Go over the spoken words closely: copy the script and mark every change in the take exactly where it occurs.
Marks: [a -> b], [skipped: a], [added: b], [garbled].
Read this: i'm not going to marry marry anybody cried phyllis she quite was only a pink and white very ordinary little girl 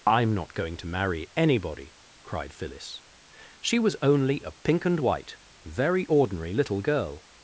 i'm not going to marry [skipped: marry] anybody cried phyllis she [skipped: quite] was only a pink and white very ordinary little girl